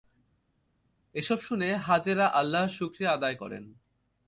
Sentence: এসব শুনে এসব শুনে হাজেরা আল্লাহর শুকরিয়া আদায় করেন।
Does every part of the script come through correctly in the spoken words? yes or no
no